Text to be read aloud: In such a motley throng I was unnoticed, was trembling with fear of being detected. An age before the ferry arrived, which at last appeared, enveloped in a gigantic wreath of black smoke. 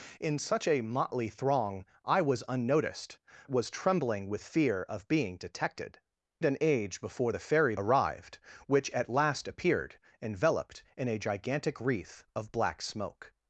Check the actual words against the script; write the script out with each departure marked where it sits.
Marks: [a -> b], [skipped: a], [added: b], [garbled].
In such a motley throng I was unnoticed, was trembling with fear of being detected. An age before the ferry arrived, which at last appeared, enveloped in a gigantic wreath of black smoke.